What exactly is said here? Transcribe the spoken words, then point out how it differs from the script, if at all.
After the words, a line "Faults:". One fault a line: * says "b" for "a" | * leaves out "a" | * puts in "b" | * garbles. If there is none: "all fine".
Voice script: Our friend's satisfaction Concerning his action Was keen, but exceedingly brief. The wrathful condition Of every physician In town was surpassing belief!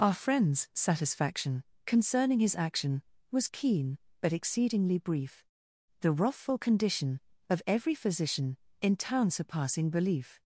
Our friend's satisfaction Concerning his action Was keen, but exceedingly brief. The wrathful condition Of every physician In town surpassing belief!
Faults:
* leaves out "was"